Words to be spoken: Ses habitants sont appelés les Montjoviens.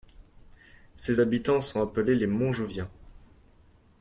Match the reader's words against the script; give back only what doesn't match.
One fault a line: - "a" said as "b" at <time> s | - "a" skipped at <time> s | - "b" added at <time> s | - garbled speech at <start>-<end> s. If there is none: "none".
none